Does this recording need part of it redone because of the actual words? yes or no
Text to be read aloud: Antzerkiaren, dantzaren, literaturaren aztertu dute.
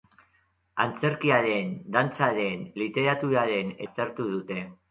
no